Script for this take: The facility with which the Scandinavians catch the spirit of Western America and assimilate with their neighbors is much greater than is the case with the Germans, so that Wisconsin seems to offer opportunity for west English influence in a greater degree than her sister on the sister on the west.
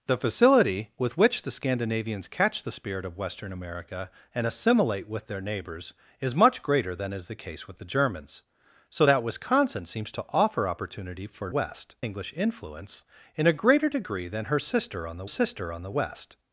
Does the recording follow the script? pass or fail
pass